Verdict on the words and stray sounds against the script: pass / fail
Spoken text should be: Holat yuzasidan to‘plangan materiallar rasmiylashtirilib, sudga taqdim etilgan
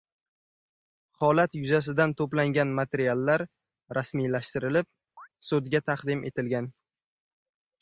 fail